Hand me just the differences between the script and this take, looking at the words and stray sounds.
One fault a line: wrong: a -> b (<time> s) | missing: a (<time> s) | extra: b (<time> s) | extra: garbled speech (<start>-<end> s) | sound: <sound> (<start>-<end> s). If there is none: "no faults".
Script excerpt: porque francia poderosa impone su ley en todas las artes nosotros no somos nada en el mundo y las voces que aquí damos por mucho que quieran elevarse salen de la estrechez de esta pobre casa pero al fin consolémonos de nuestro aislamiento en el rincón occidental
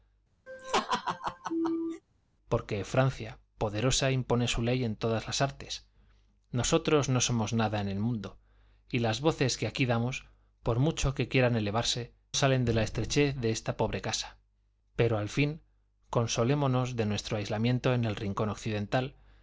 sound: laugh (0.5-2.0 s)